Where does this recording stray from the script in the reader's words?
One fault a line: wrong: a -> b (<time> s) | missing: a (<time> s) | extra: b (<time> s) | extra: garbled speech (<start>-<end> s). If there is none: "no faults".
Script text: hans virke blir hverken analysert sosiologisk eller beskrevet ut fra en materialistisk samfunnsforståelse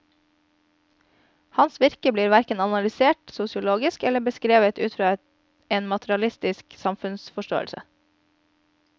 no faults